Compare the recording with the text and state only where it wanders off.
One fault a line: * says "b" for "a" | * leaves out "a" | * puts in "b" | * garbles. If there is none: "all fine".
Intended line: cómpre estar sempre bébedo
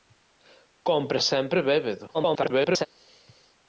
* leaves out "estar"
* garbles